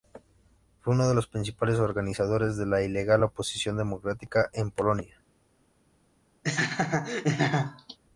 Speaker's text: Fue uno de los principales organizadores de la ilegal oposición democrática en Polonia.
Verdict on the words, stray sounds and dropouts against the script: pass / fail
fail